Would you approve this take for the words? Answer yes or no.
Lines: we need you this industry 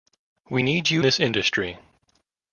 yes